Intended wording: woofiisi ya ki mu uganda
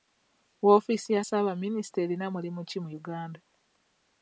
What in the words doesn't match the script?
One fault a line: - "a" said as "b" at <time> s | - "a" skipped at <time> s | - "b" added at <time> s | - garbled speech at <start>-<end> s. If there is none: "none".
- "ssaabaminisita erina mulimu" added at 1.2 s